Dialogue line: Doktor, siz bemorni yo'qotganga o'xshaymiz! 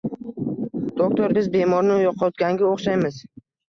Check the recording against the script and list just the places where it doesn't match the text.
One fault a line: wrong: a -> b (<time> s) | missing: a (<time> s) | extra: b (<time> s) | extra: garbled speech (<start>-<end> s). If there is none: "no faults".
wrong: siz -> biz (1.4 s)